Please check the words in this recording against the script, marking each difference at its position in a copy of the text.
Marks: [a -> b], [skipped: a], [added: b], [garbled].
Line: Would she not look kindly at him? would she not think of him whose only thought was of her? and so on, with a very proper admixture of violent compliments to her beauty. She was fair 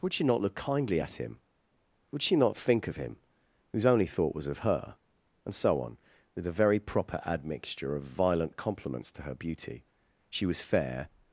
Would she not look kindly at him? would she not think of him whose only thought was of her? and so on, with a very proper admixture of violent compliments to her beauty. She was fair